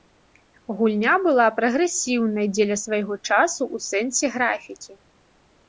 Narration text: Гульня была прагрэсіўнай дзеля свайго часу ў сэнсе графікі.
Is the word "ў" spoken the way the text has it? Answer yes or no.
yes